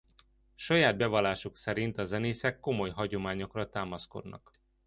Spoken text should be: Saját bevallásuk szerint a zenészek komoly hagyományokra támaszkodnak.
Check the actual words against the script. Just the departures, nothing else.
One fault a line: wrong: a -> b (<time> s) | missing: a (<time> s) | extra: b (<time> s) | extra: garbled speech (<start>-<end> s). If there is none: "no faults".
no faults